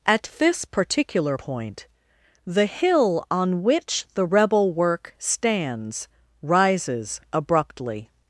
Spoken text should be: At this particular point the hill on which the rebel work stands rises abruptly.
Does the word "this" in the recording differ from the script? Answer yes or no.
no